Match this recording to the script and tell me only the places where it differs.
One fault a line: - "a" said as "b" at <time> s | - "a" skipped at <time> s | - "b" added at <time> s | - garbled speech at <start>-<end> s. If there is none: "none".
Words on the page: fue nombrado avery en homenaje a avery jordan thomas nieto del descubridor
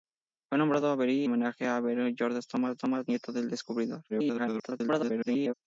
- "en" skipped at 1.3 s
- "thomas" added at 2.8 s
- garbled speech at 4.1-5.5 s